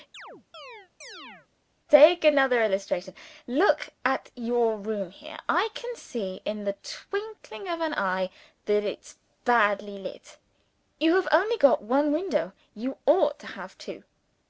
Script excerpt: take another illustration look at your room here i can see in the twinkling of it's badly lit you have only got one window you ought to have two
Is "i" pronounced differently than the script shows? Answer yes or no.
no